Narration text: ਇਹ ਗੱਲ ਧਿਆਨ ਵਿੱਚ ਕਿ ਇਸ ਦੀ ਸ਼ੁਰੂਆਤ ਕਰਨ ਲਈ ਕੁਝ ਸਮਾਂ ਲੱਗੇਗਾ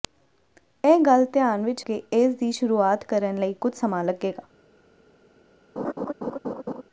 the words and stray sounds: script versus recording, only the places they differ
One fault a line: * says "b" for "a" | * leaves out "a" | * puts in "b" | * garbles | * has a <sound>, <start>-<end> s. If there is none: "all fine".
* has a laugh, 5.8-6.8 s